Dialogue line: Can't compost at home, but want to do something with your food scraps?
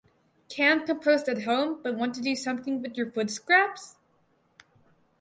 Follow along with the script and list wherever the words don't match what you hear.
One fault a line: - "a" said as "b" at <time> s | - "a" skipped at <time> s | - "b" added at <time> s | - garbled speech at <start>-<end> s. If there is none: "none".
none